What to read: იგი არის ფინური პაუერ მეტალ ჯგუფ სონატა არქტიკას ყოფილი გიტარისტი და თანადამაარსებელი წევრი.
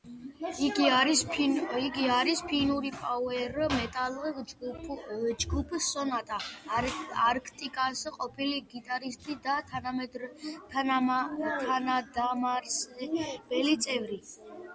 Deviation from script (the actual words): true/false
false